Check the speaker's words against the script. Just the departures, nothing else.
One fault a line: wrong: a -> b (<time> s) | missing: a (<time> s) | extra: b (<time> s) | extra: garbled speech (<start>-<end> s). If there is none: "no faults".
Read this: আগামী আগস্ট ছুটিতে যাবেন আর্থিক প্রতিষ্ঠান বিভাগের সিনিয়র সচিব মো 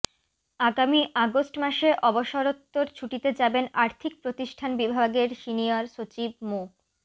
extra: মাসে অবসরোত্তর (1.6 s)